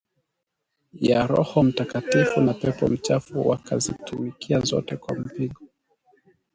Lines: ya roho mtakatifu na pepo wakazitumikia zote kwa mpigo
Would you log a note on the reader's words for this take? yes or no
yes